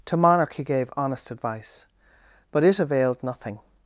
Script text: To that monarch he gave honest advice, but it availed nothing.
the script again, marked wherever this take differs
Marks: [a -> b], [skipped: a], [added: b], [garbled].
To [skipped: that] monarch he gave honest advice, but it availed nothing.